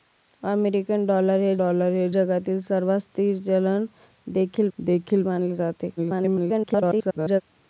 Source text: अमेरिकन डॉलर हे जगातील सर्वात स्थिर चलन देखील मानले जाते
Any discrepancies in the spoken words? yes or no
yes